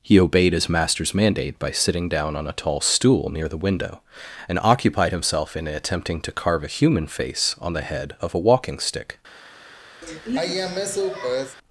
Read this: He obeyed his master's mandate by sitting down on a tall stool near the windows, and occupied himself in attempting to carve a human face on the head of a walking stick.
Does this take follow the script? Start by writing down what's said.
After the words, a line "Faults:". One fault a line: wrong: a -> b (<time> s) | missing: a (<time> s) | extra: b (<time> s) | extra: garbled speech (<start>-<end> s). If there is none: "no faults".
He obeyed his master's mandate by sitting down on a tall stool near the window, and occupied himself in attempting to carve a human face on the head of a walking stick.
Faults:
wrong: windows -> window (3.6 s)